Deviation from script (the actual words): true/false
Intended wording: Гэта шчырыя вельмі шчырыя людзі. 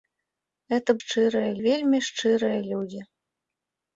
false